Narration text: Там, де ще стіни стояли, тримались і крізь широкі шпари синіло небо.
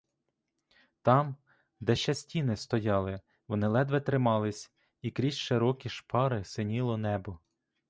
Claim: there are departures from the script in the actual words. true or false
true